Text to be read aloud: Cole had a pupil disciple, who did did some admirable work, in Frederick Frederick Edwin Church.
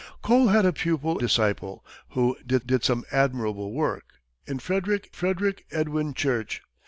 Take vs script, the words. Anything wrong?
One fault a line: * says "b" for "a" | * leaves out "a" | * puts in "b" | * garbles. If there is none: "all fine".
all fine